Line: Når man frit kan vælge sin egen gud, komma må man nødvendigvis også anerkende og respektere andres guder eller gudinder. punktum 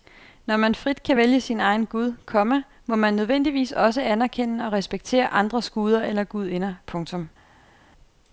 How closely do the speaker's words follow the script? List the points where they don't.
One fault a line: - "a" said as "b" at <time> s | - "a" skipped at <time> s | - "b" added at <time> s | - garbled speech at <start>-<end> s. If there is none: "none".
none